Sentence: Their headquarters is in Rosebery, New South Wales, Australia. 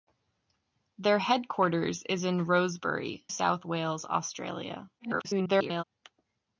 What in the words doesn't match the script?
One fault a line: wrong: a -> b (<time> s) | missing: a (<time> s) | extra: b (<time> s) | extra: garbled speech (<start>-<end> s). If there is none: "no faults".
missing: New (3.3 s)
extra: garbled speech (5.0-5.8 s)